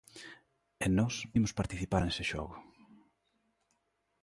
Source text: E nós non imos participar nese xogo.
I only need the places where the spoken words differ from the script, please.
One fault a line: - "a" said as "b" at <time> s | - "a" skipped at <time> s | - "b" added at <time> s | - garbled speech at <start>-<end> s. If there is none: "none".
- "non" skipped at 1.1 s